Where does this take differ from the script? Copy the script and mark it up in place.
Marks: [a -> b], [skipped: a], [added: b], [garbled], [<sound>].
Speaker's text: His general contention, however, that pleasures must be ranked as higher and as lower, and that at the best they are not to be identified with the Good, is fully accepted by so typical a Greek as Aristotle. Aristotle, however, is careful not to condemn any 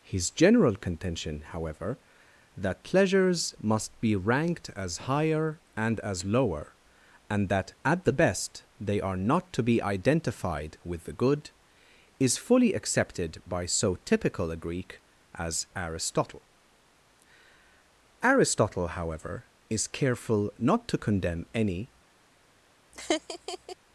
His general contention, however, that pleasures must be ranked as higher and as lower, and that at the best they are not to be identified with the Good, is fully accepted by so typical a Greek as Aristotle. Aristotle, however, is careful not to condemn any [laugh]